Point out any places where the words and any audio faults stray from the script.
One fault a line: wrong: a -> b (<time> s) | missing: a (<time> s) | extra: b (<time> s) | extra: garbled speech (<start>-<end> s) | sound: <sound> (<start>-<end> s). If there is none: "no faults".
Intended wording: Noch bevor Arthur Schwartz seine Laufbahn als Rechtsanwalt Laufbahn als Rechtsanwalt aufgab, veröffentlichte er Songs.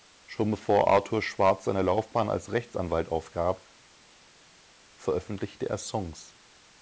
wrong: Noch -> Schon (0.2 s)
missing: Laufbahn als Rechtsanwalt (3.1 s)